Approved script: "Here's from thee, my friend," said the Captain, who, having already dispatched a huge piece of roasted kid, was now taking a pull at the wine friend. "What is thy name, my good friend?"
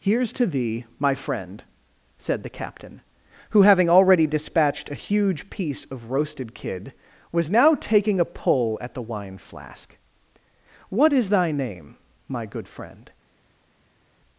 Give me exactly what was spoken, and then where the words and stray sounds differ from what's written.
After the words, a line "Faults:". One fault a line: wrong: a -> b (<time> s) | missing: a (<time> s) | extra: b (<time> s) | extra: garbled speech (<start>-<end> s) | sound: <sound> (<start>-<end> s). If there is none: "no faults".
"Here's to thee, my friend," said the Captain, who, having already dispatched a huge piece of roasted kid, was now taking a pull at the wine flask. "What is thy name, my good friend?"
Faults:
wrong: from -> to (0.3 s)
wrong: friend -> flask (9.4 s)